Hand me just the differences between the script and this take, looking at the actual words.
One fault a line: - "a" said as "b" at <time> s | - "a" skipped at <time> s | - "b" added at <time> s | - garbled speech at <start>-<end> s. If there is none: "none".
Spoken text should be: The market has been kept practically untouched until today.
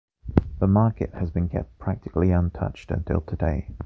none